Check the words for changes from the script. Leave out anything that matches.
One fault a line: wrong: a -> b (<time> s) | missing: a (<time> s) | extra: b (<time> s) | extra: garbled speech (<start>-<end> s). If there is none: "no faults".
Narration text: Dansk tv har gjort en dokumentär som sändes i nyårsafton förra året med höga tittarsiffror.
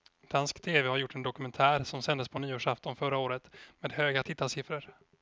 wrong: i -> på (2.3 s)